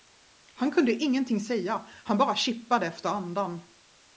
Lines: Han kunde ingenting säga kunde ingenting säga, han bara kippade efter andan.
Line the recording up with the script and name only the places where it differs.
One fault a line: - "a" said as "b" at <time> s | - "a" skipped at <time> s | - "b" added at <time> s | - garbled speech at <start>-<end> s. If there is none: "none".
- "kunde ingenting säga" skipped at 1.9 s